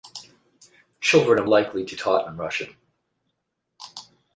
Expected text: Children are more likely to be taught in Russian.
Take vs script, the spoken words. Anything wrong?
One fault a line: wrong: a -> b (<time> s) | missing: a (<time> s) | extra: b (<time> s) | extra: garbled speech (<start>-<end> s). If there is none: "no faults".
missing: more (1.5 s)
missing: be (1.9 s)